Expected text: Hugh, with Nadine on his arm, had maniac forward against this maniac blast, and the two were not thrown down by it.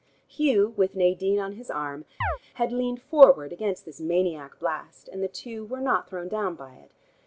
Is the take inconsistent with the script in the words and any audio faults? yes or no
yes